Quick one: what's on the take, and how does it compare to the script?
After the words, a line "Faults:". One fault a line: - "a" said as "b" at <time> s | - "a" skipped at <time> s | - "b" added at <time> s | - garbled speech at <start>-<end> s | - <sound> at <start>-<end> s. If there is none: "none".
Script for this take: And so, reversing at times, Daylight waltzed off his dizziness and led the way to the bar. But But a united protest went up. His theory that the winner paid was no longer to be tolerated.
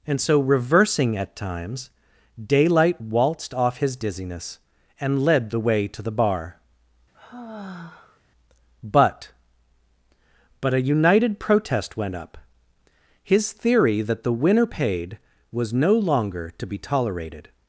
And so, reversing at times, Daylight waltzed off his dizziness and led the way to the bar. But But a united protest went up. His theory that the winner paid was no longer to be tolerated.
Faults:
- sigh at 7.1-8.2 s